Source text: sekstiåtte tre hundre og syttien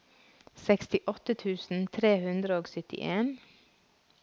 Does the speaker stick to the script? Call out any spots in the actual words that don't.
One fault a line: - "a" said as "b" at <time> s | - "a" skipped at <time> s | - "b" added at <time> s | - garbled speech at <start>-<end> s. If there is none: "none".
- "tusen" added at 1.4 s